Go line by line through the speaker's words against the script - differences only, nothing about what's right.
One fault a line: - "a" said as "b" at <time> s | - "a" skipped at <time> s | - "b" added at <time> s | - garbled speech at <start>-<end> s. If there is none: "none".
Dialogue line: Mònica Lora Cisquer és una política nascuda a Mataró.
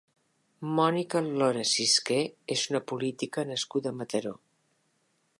none